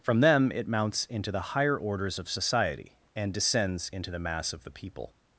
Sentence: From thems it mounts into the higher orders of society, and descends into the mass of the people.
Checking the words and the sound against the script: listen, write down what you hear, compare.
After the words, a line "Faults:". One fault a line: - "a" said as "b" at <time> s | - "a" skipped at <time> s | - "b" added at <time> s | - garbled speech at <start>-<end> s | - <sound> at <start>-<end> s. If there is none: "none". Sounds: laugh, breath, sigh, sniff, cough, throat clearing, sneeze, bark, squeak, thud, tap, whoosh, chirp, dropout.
From them it mounts into the higher orders of society, and descends into the mass of the people.
Faults:
- "thems" said as "them" at 0.2 s